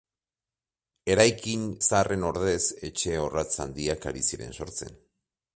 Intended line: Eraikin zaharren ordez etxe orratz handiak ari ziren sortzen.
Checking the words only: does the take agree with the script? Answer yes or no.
yes